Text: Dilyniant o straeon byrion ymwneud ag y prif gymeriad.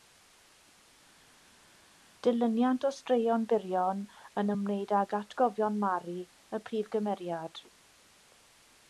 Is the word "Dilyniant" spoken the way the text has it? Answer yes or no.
yes